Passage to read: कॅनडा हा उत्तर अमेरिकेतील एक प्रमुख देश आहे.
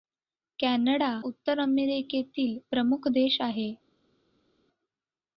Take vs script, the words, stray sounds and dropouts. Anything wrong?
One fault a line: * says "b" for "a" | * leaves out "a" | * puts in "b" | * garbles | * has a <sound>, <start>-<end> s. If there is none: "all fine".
* leaves out "हा"
* leaves out "एक"